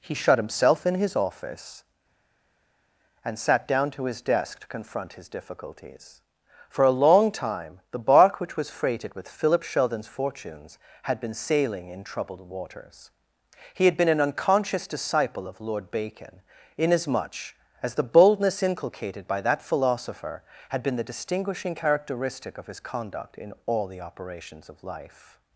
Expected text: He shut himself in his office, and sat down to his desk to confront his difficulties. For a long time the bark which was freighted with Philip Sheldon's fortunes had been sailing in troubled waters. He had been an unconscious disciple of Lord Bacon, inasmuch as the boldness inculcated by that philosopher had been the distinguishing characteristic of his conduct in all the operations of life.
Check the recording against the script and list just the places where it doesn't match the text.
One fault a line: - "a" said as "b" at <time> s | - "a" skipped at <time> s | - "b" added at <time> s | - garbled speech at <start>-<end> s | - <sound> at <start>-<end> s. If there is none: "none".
none